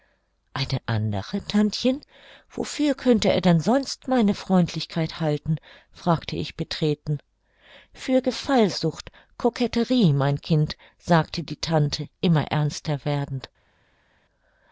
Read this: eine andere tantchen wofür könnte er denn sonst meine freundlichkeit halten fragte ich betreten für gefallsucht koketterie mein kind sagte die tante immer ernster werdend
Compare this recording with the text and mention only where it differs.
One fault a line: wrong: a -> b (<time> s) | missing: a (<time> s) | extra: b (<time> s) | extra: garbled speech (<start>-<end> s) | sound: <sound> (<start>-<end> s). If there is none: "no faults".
no faults